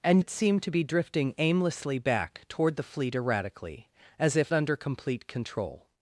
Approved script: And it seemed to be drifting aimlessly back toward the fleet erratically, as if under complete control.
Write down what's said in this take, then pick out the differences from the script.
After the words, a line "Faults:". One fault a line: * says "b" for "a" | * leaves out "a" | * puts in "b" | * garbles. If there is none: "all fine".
And it seemed to be drifting aimlessly back toward the fleet erratically, as if under complete control.
Faults:
all fine